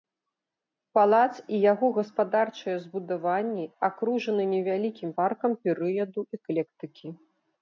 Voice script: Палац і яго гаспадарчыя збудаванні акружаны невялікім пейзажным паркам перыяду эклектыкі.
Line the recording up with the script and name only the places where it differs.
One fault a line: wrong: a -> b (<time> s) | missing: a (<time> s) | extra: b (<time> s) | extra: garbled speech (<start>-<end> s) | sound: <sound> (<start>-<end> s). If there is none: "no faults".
missing: пейзажным (5.1 s)